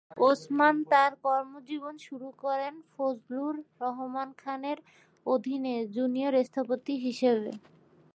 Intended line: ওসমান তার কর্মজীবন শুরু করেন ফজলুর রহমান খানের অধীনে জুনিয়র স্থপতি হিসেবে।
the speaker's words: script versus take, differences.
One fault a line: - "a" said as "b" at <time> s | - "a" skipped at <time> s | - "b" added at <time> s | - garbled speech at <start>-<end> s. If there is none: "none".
none